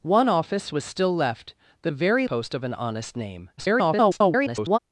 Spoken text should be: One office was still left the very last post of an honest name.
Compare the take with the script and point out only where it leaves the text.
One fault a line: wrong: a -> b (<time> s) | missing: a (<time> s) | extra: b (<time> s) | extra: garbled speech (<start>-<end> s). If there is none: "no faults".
missing: last (2.3 s)
extra: garbled speech (3.6-4.8 s)